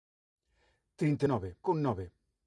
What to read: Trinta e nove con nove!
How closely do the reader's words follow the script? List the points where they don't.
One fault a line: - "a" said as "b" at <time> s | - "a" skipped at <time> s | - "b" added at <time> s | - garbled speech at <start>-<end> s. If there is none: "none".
none